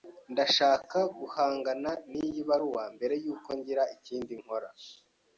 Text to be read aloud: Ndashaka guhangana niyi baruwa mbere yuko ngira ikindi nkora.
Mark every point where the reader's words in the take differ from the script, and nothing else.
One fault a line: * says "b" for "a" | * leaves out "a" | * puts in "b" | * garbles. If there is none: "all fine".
all fine